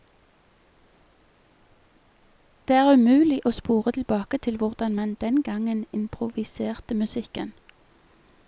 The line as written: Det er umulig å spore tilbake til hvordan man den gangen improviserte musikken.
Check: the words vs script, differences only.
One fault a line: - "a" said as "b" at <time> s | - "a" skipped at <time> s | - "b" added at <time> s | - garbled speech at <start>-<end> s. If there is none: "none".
none